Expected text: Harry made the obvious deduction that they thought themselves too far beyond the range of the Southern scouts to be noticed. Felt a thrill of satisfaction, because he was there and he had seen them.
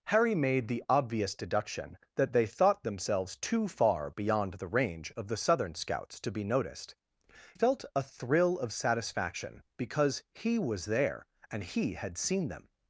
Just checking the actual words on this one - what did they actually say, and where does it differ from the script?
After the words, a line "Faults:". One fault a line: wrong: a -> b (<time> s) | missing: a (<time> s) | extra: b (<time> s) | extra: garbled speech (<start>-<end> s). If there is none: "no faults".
Harry made the obvious deduction that they thought themselves too far beyond the range of the Southern scouts to be noticed. Felt a thrill of satisfaction, because he was there and he had seen them.
Faults:
no faults